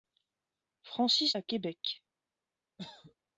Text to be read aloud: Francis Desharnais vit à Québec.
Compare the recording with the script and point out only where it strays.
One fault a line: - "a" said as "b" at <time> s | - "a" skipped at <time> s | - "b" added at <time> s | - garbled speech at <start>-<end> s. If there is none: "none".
- "Desharnais vit" skipped at 1.4 s